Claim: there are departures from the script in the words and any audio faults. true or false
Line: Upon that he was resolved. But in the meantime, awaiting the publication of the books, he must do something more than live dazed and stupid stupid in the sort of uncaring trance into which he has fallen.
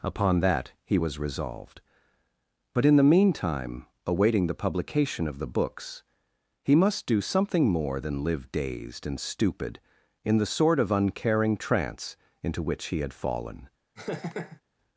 true